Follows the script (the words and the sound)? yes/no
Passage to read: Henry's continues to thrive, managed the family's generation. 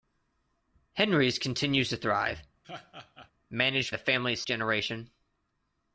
no